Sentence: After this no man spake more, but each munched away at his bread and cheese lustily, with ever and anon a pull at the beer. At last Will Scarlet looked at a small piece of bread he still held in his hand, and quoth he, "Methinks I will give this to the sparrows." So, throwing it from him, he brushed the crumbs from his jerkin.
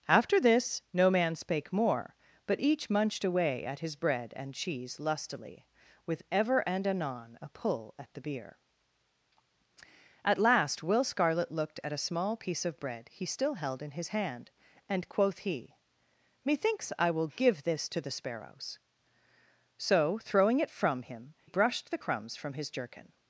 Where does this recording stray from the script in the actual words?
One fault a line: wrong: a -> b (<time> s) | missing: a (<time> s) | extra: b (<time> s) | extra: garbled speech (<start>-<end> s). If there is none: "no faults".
missing: he (21.3 s)